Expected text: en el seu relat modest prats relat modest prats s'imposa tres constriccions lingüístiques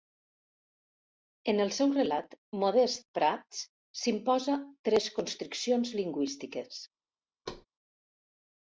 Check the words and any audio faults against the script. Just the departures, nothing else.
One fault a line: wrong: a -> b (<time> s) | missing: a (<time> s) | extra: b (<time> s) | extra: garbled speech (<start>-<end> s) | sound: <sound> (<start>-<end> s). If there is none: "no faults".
missing: relat modest prats (3.6 s)
sound: thud (7.5-7.7 s)